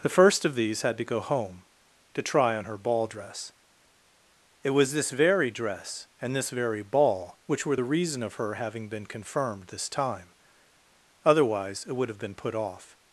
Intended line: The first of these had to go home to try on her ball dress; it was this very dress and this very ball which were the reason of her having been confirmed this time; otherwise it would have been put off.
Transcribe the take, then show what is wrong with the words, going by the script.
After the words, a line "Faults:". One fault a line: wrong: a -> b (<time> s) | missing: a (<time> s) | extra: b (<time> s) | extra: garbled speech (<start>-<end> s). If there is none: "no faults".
The first of these had to go home to try on her ball dress; it was this very dress and this very ball which were the reason of her having been confirmed this time; otherwise it would have been put off.
Faults:
no faults